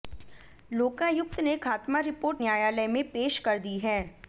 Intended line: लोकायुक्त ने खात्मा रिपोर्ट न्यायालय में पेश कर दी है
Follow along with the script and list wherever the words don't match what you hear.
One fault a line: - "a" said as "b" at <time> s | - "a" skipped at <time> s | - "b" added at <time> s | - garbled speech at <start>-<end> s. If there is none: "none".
none